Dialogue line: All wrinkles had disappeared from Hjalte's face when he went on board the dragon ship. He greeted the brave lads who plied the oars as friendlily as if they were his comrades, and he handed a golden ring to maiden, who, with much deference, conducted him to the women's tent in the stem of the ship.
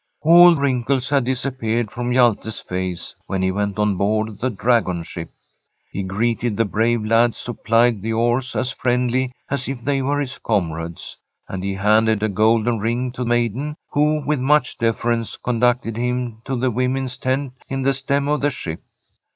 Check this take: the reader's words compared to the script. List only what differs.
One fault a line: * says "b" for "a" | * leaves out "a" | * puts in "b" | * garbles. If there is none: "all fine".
all fine